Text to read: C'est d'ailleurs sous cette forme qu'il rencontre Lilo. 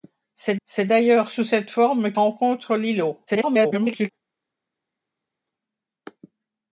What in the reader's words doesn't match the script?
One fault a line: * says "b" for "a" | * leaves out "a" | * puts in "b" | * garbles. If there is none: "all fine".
* puts in "c'est"
* leaves out "qu'il"
* garbles